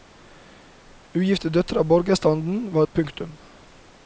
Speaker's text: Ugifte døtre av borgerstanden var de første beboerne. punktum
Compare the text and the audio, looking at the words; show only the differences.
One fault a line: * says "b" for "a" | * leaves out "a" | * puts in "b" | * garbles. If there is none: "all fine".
* leaves out "de første beboerne"